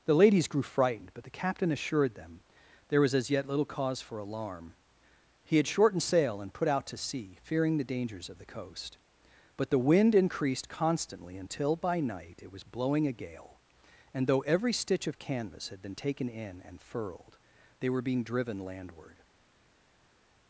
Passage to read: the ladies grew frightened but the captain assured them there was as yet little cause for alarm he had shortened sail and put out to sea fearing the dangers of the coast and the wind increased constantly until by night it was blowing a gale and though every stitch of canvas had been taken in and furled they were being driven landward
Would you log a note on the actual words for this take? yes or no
yes